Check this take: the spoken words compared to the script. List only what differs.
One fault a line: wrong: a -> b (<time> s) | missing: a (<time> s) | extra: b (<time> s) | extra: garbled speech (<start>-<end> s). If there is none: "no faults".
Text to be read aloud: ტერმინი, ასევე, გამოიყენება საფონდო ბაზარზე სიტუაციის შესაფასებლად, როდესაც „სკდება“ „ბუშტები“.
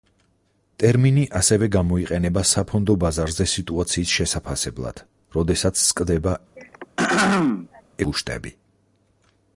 no faults